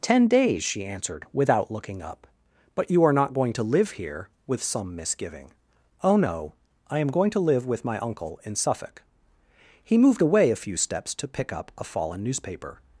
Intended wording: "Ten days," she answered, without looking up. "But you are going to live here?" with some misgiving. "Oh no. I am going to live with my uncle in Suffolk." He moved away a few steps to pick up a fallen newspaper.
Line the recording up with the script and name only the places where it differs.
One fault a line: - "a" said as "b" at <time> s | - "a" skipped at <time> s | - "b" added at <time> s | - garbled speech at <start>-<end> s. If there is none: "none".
- "not" added at 3.1 s